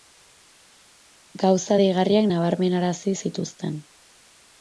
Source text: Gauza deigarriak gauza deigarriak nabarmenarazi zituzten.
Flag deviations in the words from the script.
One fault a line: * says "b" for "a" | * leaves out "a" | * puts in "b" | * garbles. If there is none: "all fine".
* leaves out "gauza deigarriak"